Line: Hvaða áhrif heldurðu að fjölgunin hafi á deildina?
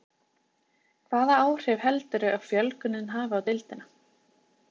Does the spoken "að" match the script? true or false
true